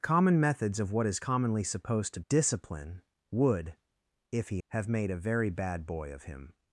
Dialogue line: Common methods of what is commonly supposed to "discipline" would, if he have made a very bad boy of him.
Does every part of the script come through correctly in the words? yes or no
yes